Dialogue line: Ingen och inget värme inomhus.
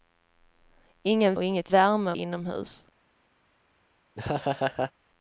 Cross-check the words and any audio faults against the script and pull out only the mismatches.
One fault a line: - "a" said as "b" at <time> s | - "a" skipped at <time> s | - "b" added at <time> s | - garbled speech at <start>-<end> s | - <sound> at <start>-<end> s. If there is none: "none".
- laugh at 4.1-4.9 s